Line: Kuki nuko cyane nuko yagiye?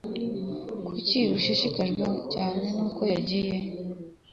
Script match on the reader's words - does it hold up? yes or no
no